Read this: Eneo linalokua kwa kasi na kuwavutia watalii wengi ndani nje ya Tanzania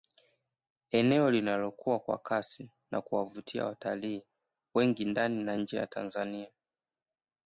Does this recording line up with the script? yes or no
no